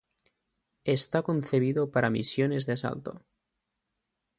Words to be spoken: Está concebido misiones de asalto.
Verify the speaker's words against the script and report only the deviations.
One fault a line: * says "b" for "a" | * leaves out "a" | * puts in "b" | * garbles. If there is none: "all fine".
* puts in "para"